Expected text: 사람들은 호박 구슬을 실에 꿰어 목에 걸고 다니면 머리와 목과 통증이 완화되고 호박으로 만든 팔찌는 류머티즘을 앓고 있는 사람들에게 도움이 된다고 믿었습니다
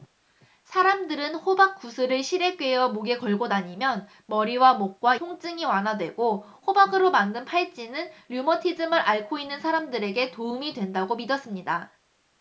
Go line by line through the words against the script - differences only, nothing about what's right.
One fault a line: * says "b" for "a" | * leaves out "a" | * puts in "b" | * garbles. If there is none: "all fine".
all fine